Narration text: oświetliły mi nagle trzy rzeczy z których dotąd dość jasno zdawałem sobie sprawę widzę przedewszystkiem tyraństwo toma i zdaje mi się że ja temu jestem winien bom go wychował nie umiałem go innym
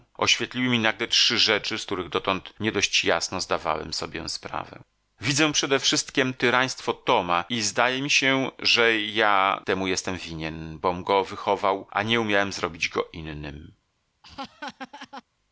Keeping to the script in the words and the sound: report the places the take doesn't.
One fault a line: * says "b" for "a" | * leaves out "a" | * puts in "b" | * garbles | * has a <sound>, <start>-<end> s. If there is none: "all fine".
* puts in "nie"
* puts in "a"
* puts in "zrobić"
* has a laugh, 14.2-15.2 s